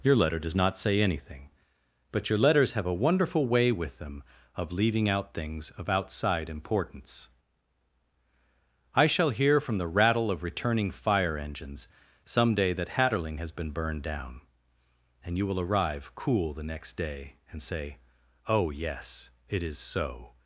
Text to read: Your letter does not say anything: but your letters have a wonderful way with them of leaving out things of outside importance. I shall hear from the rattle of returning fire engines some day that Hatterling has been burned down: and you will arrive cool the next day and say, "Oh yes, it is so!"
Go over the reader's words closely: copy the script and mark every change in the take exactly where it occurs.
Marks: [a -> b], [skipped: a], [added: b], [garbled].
Your letter does not say anything: but your letters have a wonderful way with them of leaving out things of outside importance. I shall hear from the rattle of returning fire engines some day that Hatterling has been burned down: and you will arrive cool the next day and say, "Oh yes, it is so!"